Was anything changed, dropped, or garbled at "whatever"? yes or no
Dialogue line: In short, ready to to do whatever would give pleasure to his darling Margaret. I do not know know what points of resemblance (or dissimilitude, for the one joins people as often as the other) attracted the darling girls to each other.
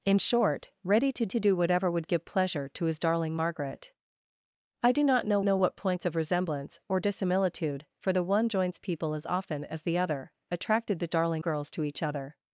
no